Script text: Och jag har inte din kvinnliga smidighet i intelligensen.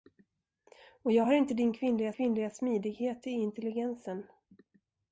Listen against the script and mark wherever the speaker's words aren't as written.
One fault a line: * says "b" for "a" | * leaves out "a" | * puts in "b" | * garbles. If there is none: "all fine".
* puts in "kvinnliga"